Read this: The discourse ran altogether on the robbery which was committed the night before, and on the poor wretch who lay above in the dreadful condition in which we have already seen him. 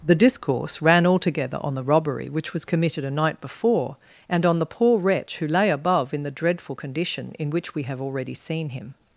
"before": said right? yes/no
yes